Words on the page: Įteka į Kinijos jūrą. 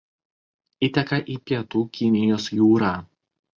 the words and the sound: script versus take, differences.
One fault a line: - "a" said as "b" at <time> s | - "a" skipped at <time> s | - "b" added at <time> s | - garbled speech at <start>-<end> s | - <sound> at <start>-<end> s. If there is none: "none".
- "Pietų" added at 1.5 s